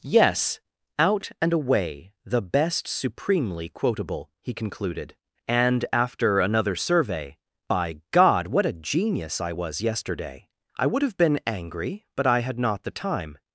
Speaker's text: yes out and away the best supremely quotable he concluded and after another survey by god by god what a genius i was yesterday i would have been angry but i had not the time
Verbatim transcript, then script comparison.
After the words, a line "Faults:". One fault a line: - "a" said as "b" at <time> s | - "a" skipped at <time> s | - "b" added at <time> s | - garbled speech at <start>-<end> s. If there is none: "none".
yes out and away the best supremely quotable he concluded and after another survey by god what a genius i was yesterday i would have been angry but i had not the time
Faults:
- "by god" skipped at 8.5 s